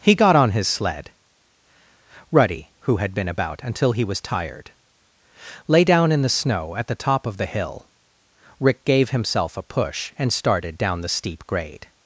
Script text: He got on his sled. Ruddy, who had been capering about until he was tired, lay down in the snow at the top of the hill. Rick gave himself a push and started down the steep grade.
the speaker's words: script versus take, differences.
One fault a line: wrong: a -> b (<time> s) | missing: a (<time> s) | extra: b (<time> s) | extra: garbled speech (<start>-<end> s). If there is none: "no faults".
missing: capering (3.3 s)